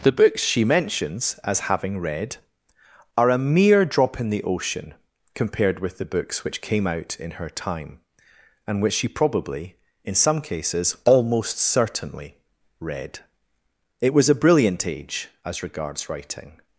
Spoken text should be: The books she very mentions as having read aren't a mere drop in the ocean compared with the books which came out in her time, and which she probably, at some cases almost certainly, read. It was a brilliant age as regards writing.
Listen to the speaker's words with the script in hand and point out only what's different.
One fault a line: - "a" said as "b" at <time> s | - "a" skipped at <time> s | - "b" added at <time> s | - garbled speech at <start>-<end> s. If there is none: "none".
- "very" skipped at 0.6 s
- "aren't" said as "are" at 3.1 s
- "at" said as "in" at 10.0 s